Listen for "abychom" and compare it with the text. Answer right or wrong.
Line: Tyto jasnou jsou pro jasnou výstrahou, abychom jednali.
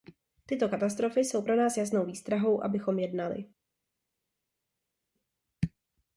right